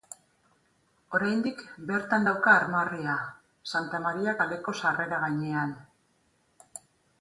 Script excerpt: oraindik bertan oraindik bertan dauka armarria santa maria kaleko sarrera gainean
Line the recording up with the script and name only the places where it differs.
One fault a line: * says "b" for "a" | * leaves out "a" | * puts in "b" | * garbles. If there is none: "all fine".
* leaves out "oraindik bertan"